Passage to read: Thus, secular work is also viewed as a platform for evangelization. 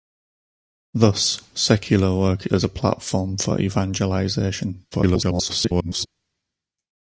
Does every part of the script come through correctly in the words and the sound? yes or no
no